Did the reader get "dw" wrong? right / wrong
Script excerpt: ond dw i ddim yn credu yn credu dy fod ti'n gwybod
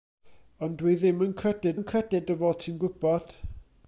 right